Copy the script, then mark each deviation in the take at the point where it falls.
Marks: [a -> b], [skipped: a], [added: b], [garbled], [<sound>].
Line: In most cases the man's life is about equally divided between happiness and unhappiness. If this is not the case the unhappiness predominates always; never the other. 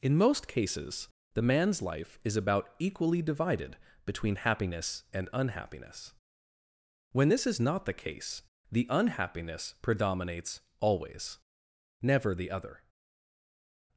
In most cases the man's life is about equally divided between happiness and unhappiness. [If -> When] this is not the case the unhappiness predominates always; never the other.